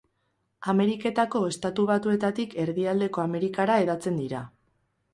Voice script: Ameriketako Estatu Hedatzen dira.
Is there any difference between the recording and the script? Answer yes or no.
yes